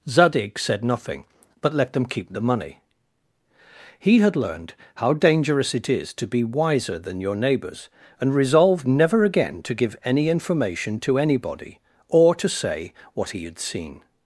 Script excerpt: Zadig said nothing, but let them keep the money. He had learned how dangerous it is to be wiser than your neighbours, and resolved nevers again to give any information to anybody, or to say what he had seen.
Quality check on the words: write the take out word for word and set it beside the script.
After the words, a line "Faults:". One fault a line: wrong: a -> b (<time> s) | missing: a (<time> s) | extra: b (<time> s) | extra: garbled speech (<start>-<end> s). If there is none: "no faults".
Zadig said nothing, but let them keep the money. He had learned how dangerous it is to be wiser than your neighbours, and resolved never again to give any information to anybody, or to say what he had seen.
Faults:
wrong: nevers -> never (8.9 s)